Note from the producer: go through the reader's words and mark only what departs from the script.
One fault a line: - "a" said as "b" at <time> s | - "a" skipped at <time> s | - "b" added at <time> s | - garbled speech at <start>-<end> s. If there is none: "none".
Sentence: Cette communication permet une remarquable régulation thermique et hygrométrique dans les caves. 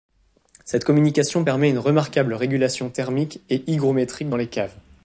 none